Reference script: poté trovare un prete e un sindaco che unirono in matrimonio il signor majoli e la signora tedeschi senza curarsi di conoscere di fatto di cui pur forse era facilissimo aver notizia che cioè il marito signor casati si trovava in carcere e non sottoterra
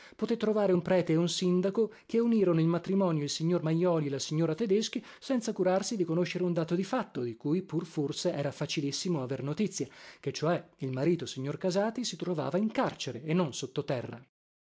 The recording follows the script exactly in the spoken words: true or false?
false